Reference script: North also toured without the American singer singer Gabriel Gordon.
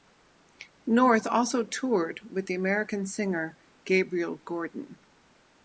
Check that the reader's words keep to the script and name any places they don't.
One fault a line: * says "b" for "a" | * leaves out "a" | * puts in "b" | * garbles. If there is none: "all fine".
* says "with" for "without"
* leaves out "singer"